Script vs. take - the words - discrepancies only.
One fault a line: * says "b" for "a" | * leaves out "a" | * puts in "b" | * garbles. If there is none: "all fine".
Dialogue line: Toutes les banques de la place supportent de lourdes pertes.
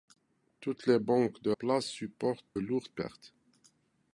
* leaves out "la"
* leaves out "de"